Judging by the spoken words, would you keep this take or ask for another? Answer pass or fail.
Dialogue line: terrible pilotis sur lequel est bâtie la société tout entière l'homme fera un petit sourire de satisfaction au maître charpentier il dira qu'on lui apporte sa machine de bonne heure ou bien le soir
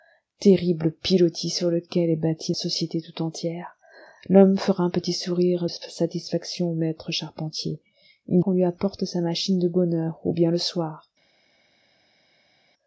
fail